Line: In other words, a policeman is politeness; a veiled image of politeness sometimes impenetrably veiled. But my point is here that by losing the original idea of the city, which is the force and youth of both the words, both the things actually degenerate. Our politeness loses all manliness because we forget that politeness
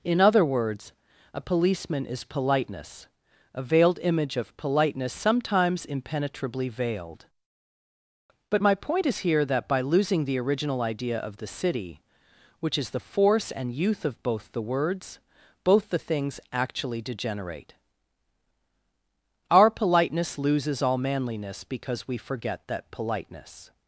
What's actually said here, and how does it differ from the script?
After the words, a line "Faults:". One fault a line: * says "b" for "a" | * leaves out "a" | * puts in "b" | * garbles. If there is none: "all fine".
In other words, a policeman is politeness; a veiled image of politeness sometimes impenetrably veiled. But my point is here that by losing the original idea of the city, which is the force and youth of both the words, both the things actually degenerate. Our politeness loses all manliness because we forget that politeness
Faults:
all fine